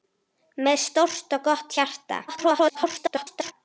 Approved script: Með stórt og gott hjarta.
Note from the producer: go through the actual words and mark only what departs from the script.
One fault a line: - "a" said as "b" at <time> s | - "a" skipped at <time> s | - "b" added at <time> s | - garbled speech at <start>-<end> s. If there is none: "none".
- garbled speech at 2.3-3.5 s